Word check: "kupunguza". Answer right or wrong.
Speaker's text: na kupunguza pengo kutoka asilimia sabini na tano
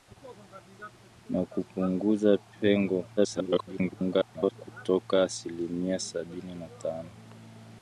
right